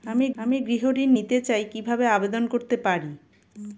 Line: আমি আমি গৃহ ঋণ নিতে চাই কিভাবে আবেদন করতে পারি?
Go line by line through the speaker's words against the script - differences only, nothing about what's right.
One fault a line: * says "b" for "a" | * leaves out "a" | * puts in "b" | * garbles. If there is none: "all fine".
all fine